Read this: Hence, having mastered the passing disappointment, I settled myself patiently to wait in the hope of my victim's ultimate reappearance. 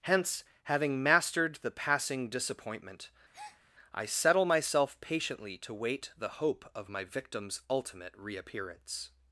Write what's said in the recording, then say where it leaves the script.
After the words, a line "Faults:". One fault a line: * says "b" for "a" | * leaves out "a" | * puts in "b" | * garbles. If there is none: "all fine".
Hence, having mastered the passing disappointment, I settle myself patiently to wait the hope of my victim's ultimate reappearance.
Faults:
* says "settle" for "settled"
* leaves out "in"